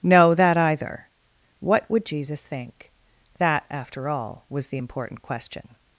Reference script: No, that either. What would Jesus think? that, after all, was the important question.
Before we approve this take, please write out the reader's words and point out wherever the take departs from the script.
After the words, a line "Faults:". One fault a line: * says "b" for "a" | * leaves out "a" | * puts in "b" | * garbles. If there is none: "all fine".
No, that either. What would Jesus think? that, after all, was the important question.
Faults:
all fine